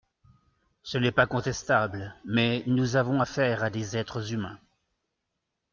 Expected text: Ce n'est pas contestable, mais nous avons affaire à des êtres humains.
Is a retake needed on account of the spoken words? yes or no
no